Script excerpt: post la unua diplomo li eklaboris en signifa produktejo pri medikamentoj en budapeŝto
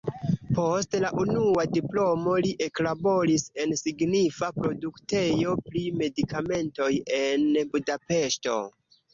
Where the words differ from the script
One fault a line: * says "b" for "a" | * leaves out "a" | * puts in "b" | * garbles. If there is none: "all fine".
all fine